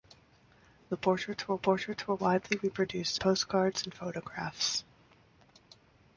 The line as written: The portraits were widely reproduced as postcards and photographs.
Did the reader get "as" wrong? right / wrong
wrong